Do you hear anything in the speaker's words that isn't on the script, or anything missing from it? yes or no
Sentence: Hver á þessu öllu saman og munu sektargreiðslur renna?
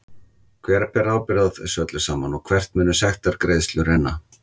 yes